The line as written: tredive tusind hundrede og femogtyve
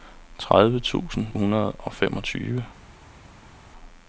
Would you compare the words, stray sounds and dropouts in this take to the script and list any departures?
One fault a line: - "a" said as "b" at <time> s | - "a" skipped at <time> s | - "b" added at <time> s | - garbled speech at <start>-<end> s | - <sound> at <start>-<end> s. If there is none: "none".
none